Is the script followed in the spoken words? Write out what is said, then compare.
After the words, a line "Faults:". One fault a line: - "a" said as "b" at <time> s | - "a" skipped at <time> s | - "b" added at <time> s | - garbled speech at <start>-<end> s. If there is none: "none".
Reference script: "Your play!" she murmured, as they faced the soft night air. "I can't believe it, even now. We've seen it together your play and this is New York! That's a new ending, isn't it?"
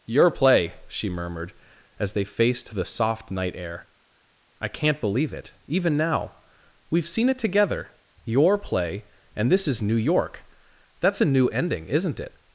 "Your play!" she murmured, as they faced the soft night air. "I can't believe it, even now. We've seen it together your play and this is New York! That's a new ending, isn't it?"
Faults:
none